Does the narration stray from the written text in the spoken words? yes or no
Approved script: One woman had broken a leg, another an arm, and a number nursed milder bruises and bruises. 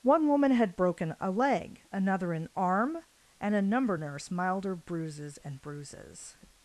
yes